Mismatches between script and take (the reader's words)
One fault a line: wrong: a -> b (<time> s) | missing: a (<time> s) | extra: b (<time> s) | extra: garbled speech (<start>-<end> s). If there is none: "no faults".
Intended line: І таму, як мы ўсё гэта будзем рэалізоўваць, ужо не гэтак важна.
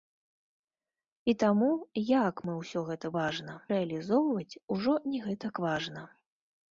wrong: будзем -> важна (3.2 s)